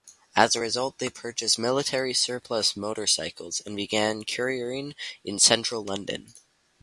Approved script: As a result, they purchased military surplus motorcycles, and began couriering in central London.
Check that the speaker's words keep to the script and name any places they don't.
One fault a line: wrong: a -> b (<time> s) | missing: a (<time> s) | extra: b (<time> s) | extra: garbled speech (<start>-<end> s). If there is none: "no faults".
no faults